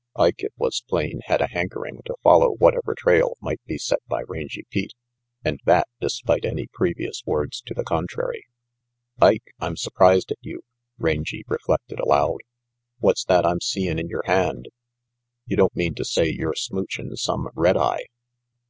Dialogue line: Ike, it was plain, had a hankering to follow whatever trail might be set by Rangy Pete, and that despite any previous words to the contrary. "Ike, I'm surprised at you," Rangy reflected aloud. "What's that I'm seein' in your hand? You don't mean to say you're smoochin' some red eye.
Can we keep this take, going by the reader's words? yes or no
yes